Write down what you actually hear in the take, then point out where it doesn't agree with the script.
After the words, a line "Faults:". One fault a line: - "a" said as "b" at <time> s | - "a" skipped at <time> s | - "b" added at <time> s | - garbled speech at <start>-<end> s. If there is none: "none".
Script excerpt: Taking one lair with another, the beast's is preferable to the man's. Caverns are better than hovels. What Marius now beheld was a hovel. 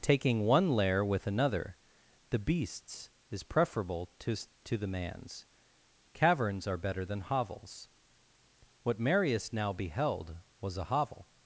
Taking one lair with another, the beast's is preferable to to the man's. Caverns are better than hovels. What Marius now beheld was a hovel.
Faults:
- "to" added at 4.7 s